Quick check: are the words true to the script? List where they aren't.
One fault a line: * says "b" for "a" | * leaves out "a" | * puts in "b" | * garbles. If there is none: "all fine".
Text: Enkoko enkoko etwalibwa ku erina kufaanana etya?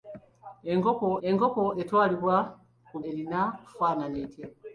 all fine